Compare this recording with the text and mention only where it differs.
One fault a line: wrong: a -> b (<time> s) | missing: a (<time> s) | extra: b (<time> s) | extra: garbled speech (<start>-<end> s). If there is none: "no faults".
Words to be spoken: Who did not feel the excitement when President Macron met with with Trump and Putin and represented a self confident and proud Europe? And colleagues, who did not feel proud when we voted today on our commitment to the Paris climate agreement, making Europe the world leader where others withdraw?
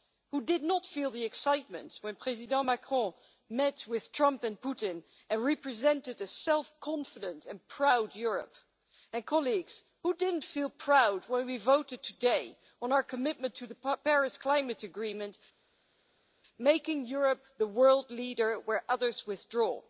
missing: with (4.1 s)